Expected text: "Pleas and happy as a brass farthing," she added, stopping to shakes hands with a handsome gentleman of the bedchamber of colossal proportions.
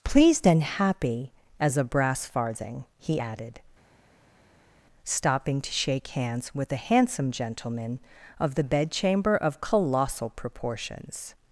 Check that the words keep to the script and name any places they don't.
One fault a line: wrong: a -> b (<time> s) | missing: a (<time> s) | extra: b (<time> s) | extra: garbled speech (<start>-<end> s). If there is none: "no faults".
wrong: Pleas -> Pleased (0.0 s)
wrong: she -> he (3.0 s)
wrong: shakes -> shake (5.7 s)